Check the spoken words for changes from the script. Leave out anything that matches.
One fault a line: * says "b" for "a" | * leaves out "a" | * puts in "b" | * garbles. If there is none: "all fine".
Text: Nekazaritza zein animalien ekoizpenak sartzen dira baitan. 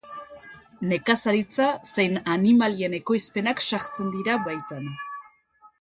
all fine